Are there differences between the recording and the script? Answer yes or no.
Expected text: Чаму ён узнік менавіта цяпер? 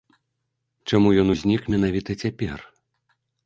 no